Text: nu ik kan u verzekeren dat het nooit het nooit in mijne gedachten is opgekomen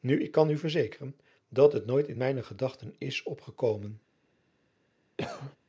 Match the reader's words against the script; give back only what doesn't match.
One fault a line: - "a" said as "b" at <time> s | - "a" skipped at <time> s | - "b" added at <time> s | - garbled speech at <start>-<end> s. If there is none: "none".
- "het nooit" skipped at 2.1 s